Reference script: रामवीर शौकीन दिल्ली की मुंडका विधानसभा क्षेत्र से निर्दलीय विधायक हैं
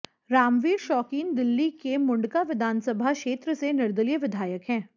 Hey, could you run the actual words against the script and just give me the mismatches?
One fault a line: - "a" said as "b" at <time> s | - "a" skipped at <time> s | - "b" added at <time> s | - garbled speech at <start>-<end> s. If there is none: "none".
- "की" said as "के" at 1.8 s